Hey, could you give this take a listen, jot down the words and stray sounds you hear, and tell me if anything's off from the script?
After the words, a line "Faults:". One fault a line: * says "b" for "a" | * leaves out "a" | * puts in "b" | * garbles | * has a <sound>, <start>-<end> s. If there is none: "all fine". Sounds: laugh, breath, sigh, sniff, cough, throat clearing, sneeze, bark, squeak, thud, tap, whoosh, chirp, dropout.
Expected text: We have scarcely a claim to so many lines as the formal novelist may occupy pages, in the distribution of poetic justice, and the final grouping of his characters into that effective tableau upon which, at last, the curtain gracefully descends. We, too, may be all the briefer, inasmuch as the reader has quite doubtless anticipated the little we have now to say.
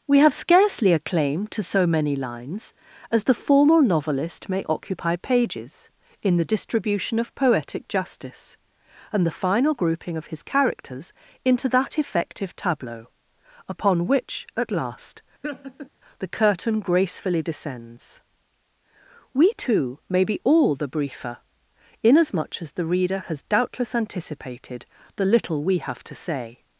We have scarcely a claim to so many lines as the formal novelist may occupy pages, in the distribution of poetic justice, and the final grouping of his characters into that effective tableau upon which, at last, the curtain gracefully descends. We, too, may be all the briefer, inasmuch as the reader has doubtless anticipated the little we have to say.
Faults:
* has a laugh, 15.4-15.9 s
* leaves out "quite"
* leaves out "now"